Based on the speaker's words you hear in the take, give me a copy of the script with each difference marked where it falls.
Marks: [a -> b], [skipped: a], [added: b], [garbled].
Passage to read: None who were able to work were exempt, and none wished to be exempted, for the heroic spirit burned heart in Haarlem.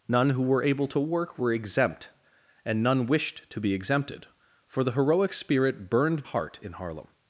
None who were able to work were exempt, and none wished to be exempted, for the heroic spirit burned heart in Haarlem.